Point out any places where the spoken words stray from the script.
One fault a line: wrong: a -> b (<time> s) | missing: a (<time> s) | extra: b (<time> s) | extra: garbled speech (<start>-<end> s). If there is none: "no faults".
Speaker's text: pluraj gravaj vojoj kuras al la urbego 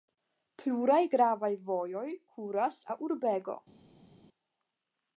missing: al (2.8 s)